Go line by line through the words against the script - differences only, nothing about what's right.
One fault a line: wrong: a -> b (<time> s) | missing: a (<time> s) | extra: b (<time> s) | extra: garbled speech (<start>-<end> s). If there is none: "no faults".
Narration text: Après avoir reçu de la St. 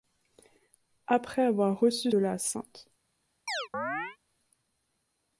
no faults